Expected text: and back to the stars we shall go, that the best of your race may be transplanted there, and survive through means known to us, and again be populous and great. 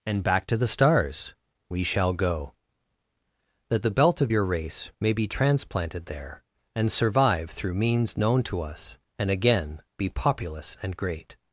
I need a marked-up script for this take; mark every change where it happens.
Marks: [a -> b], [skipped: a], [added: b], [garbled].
and back to the stars we shall go, that the [best -> belt] of your race may be transplanted there, and survive through means known to us, and again be populous and great.